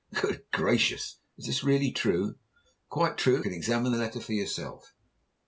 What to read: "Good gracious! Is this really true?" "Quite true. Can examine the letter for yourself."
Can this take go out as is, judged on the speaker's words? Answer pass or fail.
pass